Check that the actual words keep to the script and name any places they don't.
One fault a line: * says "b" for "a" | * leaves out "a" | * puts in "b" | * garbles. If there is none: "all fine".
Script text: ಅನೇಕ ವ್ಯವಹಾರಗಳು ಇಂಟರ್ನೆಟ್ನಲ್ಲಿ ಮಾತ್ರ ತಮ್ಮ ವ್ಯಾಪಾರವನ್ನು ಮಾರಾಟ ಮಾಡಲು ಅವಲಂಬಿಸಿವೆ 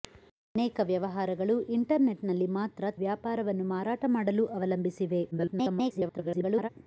* leaves out "ತಮ್ಮ"
* garbles